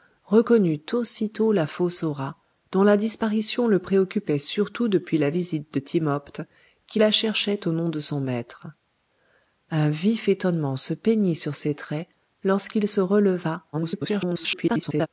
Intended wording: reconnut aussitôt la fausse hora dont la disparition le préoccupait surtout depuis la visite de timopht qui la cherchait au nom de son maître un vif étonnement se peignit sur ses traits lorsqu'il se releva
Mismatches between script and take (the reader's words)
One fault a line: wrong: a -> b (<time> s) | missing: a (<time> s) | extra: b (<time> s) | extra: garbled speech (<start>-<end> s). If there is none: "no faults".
extra: garbled speech (13.7-15.1 s)